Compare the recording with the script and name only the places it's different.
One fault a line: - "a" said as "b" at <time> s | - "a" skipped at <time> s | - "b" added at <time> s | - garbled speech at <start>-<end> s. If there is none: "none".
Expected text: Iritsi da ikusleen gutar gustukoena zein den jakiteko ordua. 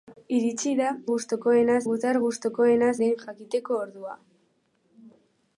- "ikusleen" said as "gustukoena" at 1.1 s
- "zein" skipped at 2.9 s